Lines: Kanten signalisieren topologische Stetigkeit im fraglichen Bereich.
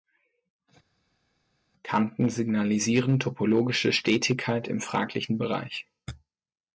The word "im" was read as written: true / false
true